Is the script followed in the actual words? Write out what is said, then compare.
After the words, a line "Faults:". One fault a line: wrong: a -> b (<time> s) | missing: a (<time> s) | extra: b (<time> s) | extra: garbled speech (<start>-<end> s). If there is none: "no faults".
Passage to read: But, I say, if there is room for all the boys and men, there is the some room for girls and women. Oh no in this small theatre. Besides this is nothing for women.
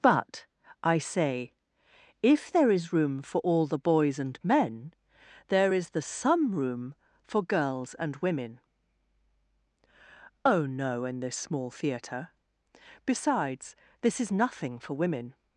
But, I say, if there is room for all the boys and men, there is the some room for girls and women. Oh no in this small theatre. Besides this is nothing for women.
Faults:
no faults